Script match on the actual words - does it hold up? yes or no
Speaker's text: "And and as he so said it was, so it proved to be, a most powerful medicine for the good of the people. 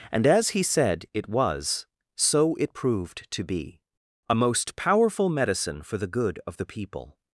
no